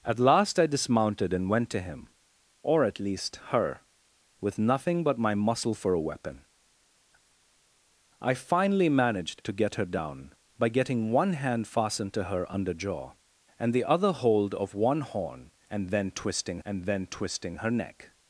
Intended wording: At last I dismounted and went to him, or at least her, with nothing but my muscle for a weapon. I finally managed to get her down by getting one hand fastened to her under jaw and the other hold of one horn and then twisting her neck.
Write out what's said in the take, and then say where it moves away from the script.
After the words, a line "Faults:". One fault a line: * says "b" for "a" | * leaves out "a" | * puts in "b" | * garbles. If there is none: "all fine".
At last I dismounted and went to him, or at least her, with nothing but my muscle for a weapon. I finally managed to get her down by getting one hand fastened to her under jaw and the other hold of one horn and then twisting and then twisting her neck.
Faults:
* puts in "and then twisting"